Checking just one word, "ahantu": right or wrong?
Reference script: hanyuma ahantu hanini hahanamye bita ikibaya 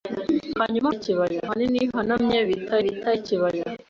wrong